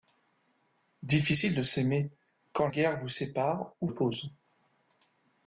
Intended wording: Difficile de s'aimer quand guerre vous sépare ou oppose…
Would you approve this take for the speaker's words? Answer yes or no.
yes